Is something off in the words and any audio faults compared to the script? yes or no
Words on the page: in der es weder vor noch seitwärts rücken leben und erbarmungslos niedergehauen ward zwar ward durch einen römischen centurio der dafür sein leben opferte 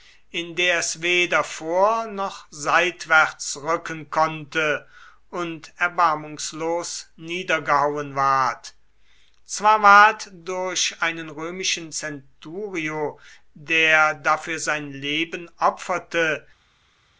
yes